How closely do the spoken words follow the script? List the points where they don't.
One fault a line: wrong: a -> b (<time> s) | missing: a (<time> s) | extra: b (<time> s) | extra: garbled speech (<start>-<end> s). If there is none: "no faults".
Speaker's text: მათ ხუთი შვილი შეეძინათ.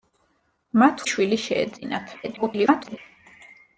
missing: ხუთი (1.0 s)
extra: garbled speech (2.2-3.0 s)